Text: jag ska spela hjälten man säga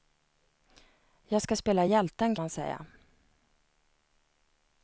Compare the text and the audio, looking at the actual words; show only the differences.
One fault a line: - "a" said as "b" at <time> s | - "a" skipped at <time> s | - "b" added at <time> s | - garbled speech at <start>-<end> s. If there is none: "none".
none